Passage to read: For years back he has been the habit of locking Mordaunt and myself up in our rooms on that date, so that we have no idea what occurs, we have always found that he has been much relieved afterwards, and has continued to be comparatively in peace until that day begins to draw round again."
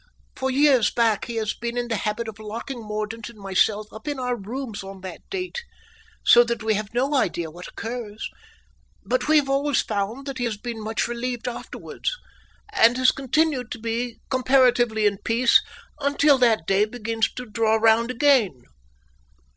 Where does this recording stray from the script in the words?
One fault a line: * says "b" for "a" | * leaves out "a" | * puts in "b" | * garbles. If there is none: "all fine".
* puts in "in"
* puts in "but"